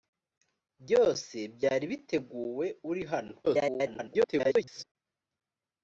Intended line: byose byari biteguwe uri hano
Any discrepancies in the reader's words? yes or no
yes